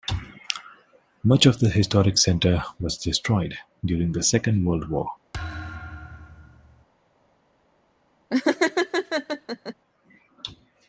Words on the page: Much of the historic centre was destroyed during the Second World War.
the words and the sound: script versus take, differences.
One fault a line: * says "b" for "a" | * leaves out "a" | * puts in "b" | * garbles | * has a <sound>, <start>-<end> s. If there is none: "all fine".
* has a thud, 5.3-6.8 s
* has a laugh, 8.3-9.7 s